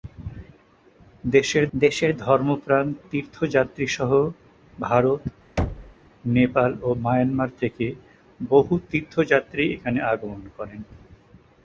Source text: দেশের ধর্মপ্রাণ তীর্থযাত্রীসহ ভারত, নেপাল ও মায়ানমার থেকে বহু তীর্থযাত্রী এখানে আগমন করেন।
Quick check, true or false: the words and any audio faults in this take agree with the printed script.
false